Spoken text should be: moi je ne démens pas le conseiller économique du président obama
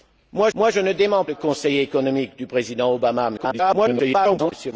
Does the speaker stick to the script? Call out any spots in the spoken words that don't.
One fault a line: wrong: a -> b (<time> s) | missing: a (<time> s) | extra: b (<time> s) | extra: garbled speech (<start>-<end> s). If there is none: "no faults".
extra: moi (0.5 s)
missing: pas (1.2 s)
extra: garbled speech (3.4-4.5 s)